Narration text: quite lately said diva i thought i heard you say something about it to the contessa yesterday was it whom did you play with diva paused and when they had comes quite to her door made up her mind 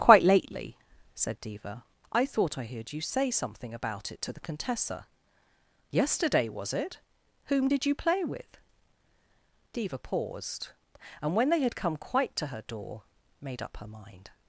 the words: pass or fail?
fail